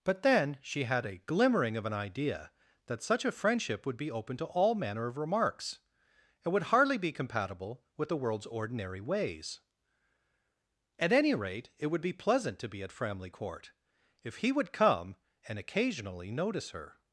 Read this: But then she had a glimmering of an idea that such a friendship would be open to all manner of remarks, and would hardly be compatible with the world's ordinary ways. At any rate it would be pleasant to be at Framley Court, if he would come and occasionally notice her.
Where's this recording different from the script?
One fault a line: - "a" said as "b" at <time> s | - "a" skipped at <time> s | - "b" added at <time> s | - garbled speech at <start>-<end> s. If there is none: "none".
none